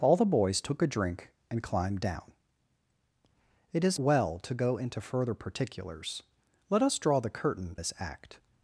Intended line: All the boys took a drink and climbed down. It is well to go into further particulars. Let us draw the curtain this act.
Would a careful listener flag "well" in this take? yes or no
no